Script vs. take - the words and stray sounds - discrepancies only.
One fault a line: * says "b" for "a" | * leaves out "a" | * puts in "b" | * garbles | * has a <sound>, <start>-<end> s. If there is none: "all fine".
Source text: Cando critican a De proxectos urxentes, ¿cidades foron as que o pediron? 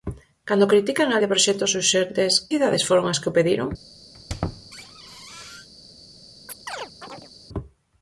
* has a squeak, 4.1-5.7 s
* has a chirp, 6.5-7.3 s